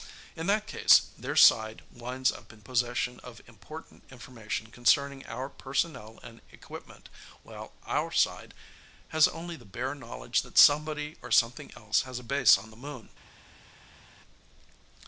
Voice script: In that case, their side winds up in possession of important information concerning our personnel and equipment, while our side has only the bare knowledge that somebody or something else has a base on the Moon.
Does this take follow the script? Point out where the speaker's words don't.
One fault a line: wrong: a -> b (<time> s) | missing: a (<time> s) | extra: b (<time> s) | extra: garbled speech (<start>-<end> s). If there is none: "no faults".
no faults